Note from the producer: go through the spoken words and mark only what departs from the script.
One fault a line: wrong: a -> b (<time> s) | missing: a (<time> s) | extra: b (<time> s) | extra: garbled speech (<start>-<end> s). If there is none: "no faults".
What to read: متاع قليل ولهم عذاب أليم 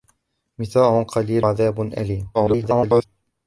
missing: ولهم (1.5 s)
extra: garbled speech (2.3-3.1 s)